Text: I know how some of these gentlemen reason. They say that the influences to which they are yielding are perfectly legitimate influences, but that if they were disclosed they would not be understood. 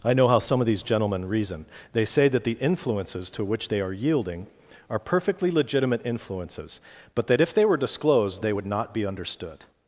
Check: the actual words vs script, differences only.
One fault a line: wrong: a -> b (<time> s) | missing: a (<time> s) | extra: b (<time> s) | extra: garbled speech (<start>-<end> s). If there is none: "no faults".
no faults